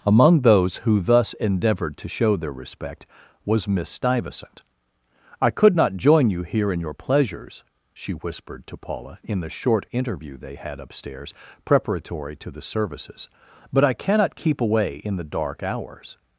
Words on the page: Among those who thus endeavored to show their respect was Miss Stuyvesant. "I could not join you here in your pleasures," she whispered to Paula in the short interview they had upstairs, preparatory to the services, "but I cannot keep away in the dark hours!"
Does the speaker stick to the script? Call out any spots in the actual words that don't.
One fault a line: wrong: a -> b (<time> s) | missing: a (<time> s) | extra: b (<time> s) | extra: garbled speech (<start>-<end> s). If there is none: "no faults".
no faults